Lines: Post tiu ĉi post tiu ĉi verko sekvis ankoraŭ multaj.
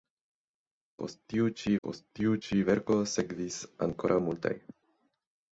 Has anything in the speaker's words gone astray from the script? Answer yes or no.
no